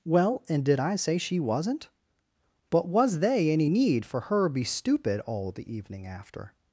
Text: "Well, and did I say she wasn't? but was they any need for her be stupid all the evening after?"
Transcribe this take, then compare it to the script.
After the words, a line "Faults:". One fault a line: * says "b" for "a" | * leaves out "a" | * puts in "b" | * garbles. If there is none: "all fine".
"Well, and did I say she wasn't? but was they any need for her be stupid all the evening after?"
Faults:
all fine